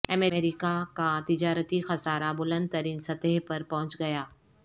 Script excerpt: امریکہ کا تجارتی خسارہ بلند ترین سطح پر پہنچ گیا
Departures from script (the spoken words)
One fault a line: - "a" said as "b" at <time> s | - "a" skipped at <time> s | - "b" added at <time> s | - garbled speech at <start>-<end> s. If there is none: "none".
none